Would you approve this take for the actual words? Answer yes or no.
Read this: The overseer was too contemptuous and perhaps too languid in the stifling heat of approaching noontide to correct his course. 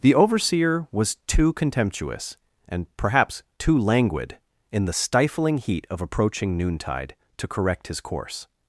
yes